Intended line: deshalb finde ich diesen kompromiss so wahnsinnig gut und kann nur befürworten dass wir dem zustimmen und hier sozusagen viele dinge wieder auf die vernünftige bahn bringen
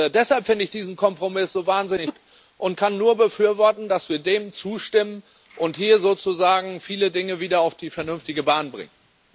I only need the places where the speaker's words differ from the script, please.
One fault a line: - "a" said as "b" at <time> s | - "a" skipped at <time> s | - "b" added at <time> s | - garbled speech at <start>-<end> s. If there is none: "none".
none